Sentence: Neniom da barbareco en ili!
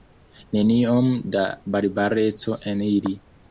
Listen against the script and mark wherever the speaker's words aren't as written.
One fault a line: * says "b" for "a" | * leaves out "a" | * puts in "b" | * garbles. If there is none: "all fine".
all fine